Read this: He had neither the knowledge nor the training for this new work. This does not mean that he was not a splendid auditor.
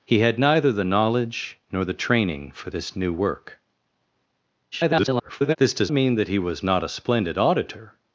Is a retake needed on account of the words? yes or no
yes